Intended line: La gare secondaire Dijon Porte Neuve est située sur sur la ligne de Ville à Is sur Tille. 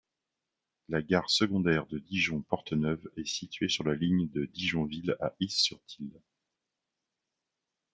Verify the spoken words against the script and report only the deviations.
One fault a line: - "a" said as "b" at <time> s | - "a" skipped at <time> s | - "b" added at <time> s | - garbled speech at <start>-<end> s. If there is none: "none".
- "de" added at 1.9 s
- "sur" skipped at 3.8 s
- "Dijon" added at 4.5 s